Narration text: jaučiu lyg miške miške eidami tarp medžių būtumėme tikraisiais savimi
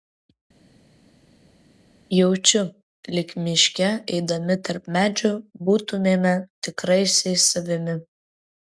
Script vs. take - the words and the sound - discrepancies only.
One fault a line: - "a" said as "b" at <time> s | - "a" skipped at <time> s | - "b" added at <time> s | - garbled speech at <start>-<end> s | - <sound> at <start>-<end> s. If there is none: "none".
- "miške" skipped at 3.9 s